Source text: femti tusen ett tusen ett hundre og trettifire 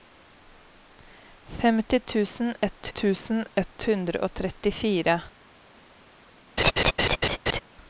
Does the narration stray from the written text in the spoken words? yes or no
no